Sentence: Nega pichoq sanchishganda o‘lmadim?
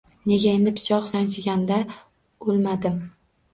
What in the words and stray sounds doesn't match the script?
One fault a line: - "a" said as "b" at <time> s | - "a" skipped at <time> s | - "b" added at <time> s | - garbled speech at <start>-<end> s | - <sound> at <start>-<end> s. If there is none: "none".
- "endi" added at 0.6 s